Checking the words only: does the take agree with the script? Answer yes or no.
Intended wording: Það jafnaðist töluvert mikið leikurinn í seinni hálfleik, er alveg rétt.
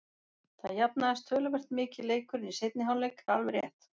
yes